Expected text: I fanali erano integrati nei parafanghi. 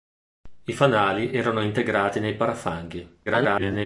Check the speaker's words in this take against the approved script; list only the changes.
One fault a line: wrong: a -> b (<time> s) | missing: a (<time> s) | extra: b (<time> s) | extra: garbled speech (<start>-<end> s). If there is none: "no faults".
extra: garbled speech (3.3-3.9 s)